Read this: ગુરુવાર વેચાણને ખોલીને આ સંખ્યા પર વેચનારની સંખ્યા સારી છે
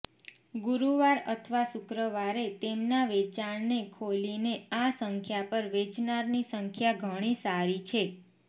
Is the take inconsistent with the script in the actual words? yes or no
yes